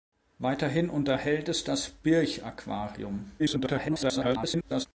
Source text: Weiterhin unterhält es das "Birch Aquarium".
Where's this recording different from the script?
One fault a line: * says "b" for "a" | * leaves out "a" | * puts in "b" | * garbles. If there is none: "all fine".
* garbles